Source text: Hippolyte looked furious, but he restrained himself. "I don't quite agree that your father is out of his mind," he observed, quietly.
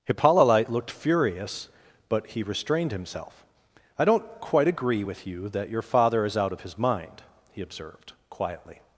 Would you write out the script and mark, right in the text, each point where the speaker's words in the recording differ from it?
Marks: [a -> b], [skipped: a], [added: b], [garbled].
Hippolyte looked furious, but he restrained himself. "I don't quite agree [added: with you] that your father is out of his mind," he observed, quietly.